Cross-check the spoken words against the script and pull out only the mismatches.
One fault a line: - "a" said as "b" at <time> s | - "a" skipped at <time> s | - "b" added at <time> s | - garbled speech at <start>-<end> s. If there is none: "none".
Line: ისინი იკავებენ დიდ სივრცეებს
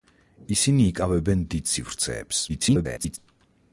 - garbled speech at 2.5-3.2 s